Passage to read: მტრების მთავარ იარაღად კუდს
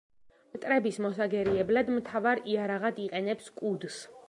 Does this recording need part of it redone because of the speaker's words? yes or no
yes